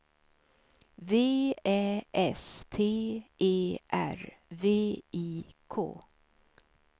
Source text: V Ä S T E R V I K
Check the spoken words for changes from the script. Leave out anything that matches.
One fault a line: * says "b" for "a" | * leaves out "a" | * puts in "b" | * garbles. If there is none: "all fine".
all fine